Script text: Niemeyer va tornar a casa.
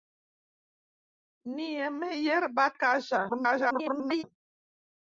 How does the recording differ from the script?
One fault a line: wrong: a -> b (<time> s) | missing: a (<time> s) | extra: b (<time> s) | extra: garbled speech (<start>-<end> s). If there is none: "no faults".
missing: tornar (2.6 s)
extra: garbled speech (3.3-4.2 s)